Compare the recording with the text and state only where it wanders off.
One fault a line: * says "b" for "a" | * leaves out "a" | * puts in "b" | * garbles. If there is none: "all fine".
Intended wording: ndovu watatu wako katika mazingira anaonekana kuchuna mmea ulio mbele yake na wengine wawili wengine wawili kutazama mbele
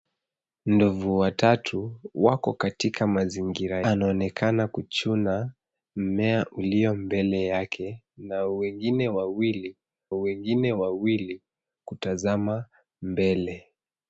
all fine